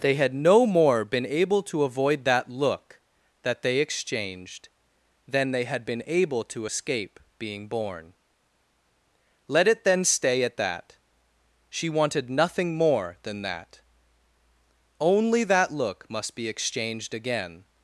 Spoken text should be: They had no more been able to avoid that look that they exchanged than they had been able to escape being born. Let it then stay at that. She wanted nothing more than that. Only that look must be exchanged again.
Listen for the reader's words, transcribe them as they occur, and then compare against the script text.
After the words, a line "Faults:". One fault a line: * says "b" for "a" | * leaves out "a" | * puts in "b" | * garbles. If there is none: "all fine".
They had no more been able to avoid that look that they exchanged than they had been able to escape being born. Let it then stay at that. She wanted nothing more than that. Only that look must be exchanged again.
Faults:
all fine